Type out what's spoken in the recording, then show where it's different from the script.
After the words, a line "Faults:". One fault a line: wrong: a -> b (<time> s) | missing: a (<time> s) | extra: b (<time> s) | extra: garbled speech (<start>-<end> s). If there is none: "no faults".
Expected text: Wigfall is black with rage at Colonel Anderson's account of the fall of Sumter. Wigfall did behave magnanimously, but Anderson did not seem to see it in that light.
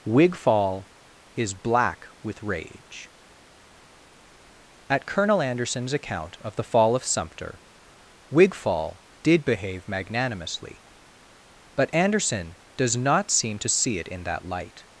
Wigfall is black with rage at Colonel Anderson's account of the fall of Sumter. Wigfall did behave magnanimously, but Anderson does not seem to see it in that light.
Faults:
wrong: did -> does (12.8 s)